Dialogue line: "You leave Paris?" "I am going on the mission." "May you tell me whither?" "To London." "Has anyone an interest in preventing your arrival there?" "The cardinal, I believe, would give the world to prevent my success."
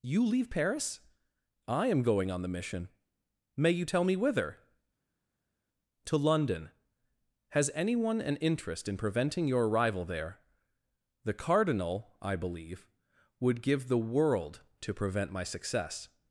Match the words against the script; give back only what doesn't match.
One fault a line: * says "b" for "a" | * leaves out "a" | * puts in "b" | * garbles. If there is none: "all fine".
all fine